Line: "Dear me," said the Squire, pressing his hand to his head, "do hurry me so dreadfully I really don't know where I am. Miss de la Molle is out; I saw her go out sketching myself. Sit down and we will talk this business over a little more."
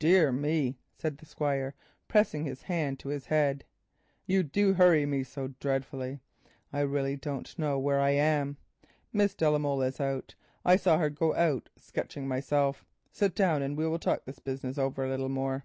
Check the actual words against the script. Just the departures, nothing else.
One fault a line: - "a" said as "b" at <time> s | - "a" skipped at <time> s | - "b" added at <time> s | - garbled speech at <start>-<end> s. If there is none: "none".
- "you" added at 4.2 s